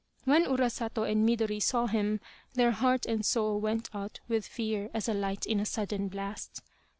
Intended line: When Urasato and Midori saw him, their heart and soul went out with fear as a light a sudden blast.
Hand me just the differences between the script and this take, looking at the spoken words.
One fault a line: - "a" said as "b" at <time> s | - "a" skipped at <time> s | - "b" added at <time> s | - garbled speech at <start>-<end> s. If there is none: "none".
- "in" added at 5.4 s